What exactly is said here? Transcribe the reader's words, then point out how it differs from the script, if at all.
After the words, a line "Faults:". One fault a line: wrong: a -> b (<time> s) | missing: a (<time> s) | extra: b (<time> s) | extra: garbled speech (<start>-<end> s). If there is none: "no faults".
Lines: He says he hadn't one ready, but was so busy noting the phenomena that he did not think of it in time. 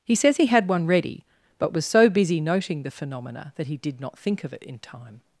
He says he had one ready, but was so busy noting the phenomena that he did not think of it in time.
Faults:
wrong: hadn't -> had (0.5 s)